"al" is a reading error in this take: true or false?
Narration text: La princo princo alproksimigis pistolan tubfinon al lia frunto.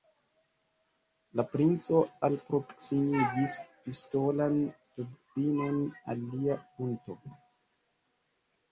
false